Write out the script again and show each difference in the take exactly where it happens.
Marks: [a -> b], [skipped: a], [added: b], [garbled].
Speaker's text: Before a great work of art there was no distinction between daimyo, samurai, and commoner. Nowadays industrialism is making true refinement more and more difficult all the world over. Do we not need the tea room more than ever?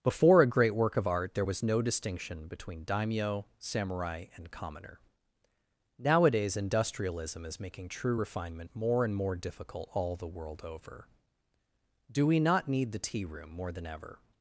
Before a great work of art there was no distinction between daimyo, samurai, and commoner. Nowadays industrialism is making true refinement more and more difficult all the world over. Do we not need the tea room more than ever?